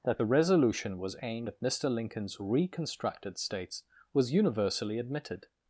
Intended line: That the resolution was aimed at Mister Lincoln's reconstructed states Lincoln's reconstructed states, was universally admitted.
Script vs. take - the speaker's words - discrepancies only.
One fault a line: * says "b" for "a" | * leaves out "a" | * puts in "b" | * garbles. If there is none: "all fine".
* leaves out "Lincoln's reconstructed states"